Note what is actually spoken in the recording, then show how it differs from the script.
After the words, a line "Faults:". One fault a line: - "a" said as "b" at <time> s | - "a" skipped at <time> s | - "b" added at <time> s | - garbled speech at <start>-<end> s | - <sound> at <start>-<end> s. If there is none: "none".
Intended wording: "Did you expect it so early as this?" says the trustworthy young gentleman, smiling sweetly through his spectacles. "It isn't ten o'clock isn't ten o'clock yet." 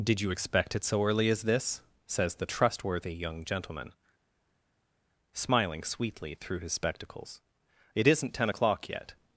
"Did you expect it so early as this?" says the trustworthy young gentleman, smiling sweetly through his spectacles. "It isn't ten o'clock yet."
Faults:
- "isn't ten o'clock" skipped at 8.9 s